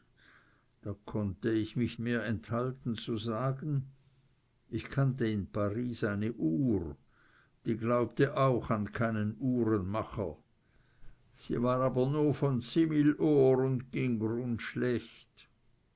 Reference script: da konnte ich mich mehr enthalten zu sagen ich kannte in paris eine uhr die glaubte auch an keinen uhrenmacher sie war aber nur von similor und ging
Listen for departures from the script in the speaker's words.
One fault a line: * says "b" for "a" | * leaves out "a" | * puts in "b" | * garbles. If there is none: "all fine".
all fine